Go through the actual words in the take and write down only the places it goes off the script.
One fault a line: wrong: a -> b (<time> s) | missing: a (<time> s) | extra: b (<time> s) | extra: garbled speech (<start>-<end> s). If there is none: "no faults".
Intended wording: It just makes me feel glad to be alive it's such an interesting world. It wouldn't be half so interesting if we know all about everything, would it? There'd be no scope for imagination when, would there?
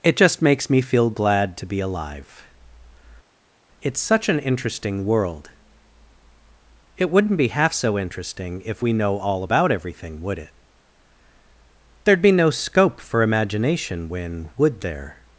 no faults